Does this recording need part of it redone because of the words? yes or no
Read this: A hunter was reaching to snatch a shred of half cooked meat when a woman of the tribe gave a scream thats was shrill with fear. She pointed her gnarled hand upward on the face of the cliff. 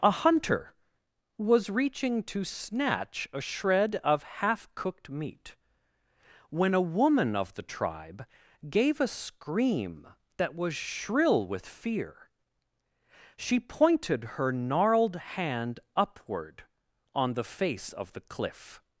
yes